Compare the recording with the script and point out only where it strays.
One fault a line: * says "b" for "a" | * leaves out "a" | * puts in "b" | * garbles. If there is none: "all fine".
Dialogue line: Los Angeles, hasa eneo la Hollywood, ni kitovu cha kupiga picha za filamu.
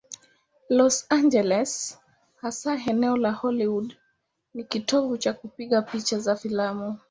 all fine